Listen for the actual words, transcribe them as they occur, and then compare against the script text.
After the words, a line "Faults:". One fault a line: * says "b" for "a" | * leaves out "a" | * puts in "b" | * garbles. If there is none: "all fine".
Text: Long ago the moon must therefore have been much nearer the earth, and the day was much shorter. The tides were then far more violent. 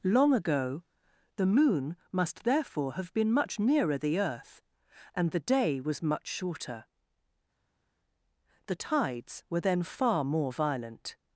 Long ago the moon must therefore have been much nearer the earth, and the day was much shorter. The tides were then far more violent.
Faults:
all fine